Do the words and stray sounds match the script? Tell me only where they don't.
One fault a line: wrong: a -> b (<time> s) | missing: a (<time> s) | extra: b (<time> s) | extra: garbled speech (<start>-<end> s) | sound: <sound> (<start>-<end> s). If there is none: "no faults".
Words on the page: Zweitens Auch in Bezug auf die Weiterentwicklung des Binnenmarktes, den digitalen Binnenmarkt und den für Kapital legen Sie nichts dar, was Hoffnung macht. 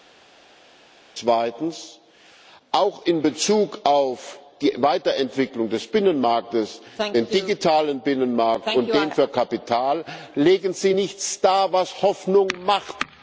no faults